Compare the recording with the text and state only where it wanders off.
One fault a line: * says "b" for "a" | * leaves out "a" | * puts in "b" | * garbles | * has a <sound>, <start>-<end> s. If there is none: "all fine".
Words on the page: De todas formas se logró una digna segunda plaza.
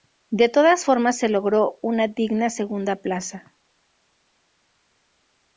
all fine